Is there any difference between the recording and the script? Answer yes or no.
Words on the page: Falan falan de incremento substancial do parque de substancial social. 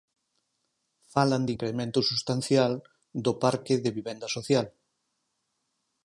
yes